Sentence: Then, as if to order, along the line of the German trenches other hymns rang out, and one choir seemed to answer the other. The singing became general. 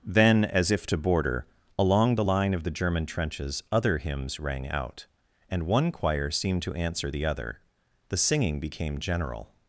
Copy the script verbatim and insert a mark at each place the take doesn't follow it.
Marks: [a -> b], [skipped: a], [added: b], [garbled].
Then, as if to [order, -> border] along the line of the German trenches other hymns rang out, and one choir seemed to answer the other. The singing became general.